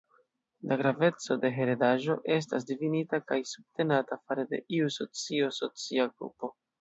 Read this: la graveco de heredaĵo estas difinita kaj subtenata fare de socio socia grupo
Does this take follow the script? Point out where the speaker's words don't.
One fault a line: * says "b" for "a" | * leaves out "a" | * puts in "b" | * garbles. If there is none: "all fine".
* puts in "iu"